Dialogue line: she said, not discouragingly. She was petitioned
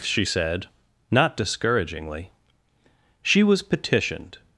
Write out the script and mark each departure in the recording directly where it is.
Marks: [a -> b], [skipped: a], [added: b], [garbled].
she said, not discouragingly. She was petitioned